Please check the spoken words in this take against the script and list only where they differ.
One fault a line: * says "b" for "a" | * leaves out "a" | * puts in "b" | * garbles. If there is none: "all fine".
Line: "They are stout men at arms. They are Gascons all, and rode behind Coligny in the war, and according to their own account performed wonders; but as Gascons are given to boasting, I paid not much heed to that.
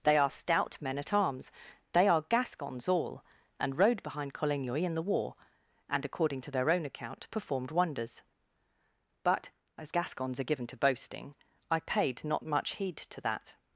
all fine